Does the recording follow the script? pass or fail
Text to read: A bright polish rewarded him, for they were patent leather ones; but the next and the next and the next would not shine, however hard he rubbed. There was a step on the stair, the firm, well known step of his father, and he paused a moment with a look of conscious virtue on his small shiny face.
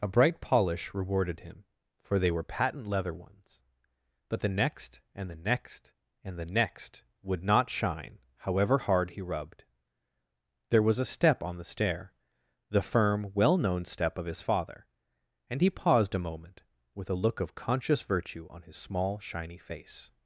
pass